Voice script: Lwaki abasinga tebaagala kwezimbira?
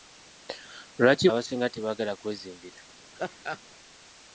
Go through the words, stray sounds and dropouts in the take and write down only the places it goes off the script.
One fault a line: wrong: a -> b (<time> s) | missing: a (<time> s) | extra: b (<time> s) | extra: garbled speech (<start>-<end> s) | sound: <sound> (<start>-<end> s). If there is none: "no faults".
sound: laugh (3.2-3.6 s)